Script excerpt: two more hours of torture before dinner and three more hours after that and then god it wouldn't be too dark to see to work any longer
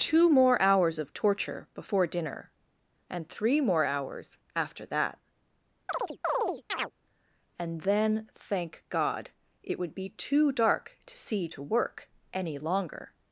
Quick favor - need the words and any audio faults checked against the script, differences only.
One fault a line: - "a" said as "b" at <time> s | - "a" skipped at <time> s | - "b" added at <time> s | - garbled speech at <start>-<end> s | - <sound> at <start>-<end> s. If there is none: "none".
- chirp at 5.9-6.9 s
- "thank" added at 8.3 s
- "wouldn't" said as "would" at 9.8 s